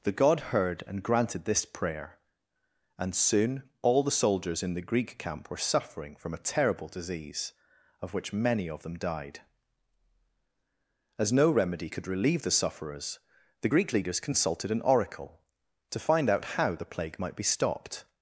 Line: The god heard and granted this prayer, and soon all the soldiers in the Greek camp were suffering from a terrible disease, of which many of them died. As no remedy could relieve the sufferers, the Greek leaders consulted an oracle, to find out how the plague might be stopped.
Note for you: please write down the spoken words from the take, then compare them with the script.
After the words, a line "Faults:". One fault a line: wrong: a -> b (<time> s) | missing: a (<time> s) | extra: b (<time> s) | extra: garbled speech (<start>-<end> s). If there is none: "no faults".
The god heard and granted this prayer, and soon all the soldiers in the Greek camp were suffering from a terrible disease, of which many of them died. As no remedy could relieve the sufferers, the Greek leaders consulted an oracle, to find out how the plague might be stopped.
Faults:
no faults